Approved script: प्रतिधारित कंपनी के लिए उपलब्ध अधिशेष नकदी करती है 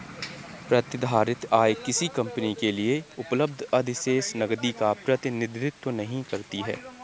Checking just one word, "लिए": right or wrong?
right